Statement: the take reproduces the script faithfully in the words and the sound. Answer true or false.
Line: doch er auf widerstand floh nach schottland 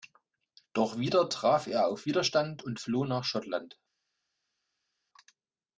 false